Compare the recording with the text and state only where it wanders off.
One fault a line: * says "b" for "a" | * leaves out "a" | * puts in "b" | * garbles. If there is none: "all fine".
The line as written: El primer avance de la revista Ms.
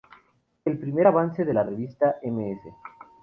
all fine